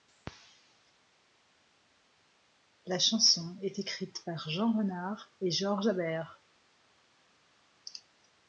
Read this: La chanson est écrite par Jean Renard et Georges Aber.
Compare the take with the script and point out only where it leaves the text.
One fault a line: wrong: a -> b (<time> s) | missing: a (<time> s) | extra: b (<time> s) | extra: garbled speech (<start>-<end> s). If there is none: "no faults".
no faults